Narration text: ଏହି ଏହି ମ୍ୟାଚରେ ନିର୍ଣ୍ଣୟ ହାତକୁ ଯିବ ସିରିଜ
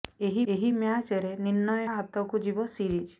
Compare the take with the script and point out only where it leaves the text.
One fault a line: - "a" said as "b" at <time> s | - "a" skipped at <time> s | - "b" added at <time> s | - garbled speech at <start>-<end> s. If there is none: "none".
none